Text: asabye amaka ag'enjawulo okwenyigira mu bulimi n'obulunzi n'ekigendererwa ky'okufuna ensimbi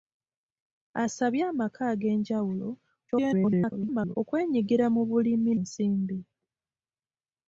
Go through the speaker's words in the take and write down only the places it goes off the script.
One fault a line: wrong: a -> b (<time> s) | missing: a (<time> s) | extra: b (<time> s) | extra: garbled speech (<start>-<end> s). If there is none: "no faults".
extra: garbled speech (3.1-4.2 s)
missing: n'obulunzi n'ekigendererwa ky'okufuna (5.5 s)